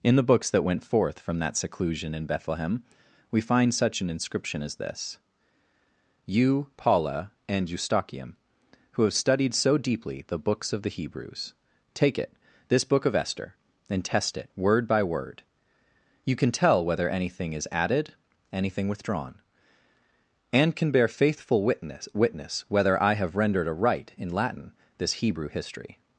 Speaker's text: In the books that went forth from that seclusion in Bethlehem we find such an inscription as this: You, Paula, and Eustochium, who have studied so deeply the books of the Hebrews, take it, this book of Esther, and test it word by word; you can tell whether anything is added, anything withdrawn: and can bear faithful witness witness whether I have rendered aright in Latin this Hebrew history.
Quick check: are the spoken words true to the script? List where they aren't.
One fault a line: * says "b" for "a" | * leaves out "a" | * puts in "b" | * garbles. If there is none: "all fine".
all fine